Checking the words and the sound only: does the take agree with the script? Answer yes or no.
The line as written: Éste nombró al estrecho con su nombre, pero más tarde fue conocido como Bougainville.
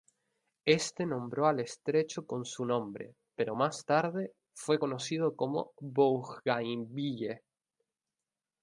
yes